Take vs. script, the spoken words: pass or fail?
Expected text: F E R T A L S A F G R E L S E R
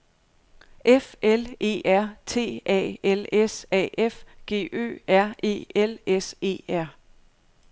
fail